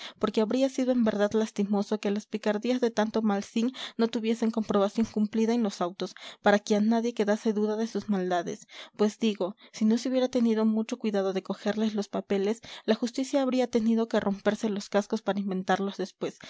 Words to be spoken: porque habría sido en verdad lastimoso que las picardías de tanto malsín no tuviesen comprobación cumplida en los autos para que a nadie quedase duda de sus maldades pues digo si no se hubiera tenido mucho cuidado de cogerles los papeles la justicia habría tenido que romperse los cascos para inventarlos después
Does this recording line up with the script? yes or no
yes